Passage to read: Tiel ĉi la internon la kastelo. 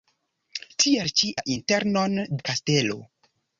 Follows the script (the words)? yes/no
yes